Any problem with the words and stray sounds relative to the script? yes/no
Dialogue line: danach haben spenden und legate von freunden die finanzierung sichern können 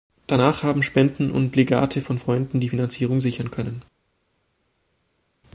no